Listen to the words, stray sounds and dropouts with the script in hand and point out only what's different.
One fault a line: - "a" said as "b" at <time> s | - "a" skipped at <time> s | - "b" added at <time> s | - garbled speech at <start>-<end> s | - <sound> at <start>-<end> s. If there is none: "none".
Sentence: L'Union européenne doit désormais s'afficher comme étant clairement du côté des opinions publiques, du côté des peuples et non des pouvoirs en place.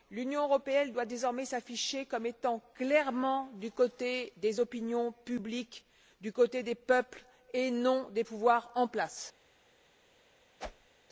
- whoosh at 10.6-10.9 s